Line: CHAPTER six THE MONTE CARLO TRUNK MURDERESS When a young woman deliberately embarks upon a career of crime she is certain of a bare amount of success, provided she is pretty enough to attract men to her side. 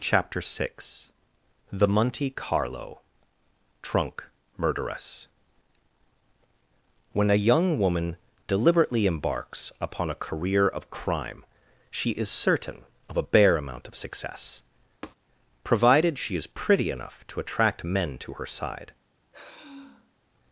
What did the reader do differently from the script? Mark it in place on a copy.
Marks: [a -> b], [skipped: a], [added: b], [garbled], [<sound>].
CHAPTER six THE MONTE CARLO TRUNK MURDERESS When a young woman deliberately embarks upon a career of crime she is certain of a bare amount of success, [tap] provided she is pretty enough to attract men to her side. [sigh]